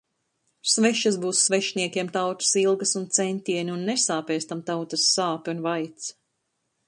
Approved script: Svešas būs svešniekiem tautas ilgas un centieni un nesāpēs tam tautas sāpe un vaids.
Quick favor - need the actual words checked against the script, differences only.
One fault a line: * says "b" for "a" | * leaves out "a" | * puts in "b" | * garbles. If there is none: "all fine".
all fine